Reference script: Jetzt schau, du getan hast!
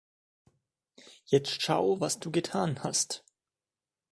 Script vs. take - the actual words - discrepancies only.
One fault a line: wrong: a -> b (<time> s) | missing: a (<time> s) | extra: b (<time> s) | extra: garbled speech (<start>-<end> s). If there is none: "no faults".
extra: was (2.0 s)